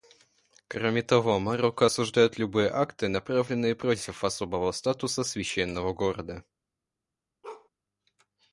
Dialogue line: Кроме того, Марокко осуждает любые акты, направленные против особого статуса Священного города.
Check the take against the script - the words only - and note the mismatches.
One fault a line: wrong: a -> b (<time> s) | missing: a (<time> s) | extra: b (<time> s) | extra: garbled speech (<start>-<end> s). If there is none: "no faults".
no faults